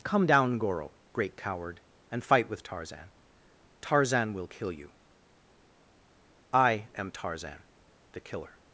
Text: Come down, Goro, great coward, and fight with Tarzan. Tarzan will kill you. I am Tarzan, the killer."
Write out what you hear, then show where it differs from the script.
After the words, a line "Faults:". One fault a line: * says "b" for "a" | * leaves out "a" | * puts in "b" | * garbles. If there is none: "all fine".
Come down, Goro, great coward, and fight with Tarzan. Tarzan will kill you. I am Tarzan, the killer."
Faults:
all fine